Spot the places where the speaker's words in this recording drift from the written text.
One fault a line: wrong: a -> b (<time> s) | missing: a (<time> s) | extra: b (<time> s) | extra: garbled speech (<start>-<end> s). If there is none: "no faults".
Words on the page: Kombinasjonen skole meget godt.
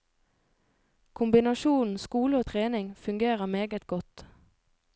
extra: og trening fungerer (2.4 s)